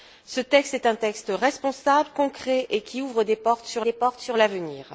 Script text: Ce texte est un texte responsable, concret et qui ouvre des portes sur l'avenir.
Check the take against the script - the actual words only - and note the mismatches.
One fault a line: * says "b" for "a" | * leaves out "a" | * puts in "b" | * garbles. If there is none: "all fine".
* puts in "des portes sur"